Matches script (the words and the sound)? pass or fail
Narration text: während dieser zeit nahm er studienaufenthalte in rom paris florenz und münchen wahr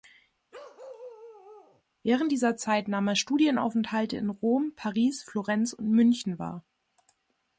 fail